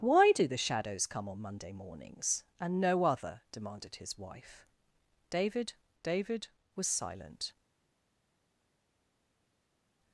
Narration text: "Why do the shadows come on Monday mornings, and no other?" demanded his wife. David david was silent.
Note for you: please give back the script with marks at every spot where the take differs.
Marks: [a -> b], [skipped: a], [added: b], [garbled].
"Why do the shadows come on Monday mornings, and no other?" demanded his wife. David david was silent.